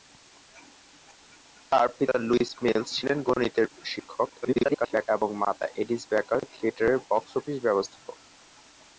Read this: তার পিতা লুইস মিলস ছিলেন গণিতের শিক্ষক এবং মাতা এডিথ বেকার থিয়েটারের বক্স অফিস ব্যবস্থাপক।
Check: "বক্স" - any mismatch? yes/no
no